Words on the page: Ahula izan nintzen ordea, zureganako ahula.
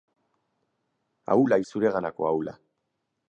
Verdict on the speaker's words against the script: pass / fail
fail